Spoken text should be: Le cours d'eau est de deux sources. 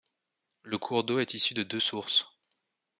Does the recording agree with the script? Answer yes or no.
no